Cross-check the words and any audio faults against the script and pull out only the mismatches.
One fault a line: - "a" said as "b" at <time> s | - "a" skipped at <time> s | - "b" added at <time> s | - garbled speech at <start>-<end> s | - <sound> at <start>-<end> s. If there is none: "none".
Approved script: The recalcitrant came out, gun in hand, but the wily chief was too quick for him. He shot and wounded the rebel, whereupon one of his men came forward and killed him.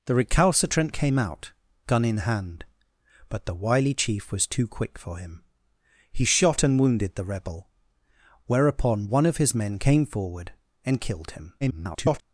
- garbled speech at 11.6-12.2 s